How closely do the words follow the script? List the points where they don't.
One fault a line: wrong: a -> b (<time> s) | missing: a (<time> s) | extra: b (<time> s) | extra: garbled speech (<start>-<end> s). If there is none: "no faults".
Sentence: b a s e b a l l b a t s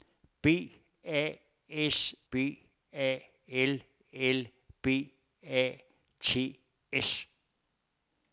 missing: e (2.1 s)